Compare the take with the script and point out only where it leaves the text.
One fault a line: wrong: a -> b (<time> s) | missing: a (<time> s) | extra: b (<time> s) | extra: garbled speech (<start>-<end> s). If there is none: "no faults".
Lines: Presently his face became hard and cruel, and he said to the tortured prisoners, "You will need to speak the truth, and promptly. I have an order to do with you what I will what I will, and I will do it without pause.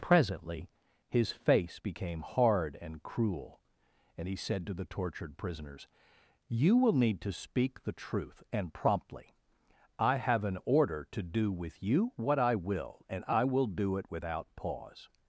missing: what I will (13.1 s)